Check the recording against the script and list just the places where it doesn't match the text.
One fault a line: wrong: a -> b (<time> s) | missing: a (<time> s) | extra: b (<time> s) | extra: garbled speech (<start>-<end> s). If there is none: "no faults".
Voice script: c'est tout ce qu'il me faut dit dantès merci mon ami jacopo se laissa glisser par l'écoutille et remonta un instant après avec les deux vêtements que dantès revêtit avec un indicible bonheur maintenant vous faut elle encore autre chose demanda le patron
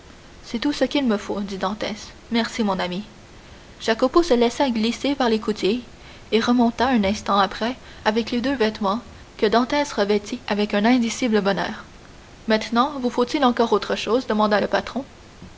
wrong: elle -> il (13.2 s)